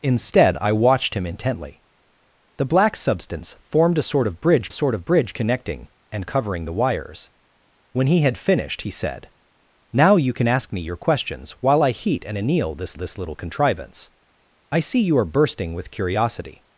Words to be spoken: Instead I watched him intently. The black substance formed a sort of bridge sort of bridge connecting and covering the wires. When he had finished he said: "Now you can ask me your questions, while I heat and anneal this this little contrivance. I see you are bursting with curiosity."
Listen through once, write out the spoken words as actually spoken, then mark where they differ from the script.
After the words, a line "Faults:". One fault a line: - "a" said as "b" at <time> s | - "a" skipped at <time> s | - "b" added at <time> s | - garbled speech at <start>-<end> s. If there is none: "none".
Instead I watched him intently. The black substance formed a sort of bridge sort of bridge connecting and covering the wires. When he had finished he said: "Now you can ask me your questions, while I heat and anneal this this little contrivance. I see you are bursting with curiosity."
Faults:
none